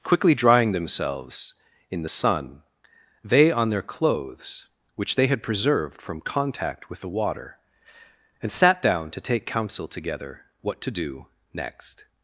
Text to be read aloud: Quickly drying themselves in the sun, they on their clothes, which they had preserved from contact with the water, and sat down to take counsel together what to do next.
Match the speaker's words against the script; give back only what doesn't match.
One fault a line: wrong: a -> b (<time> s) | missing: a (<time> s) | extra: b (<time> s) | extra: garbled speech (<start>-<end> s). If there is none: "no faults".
no faults